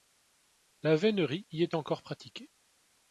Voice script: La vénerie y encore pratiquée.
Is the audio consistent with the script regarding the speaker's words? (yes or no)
no